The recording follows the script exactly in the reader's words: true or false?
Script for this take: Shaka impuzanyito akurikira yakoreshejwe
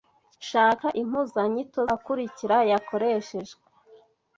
true